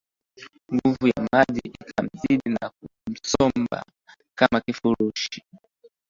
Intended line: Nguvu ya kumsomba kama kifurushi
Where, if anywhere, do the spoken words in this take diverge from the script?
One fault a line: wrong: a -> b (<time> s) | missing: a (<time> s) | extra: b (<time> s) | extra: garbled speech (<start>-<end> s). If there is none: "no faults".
extra: maji ikamzidi na (1.3 s)